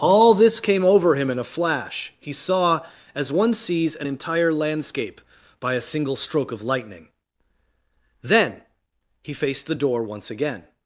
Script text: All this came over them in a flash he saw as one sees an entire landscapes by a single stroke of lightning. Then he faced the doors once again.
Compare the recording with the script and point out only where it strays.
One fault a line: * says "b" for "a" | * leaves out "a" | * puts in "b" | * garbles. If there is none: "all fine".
* says "him" for "them"
* says "landscape" for "landscapes"
* says "door" for "doors"